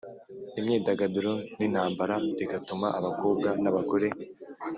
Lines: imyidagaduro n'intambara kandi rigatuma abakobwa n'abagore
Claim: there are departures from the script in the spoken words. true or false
true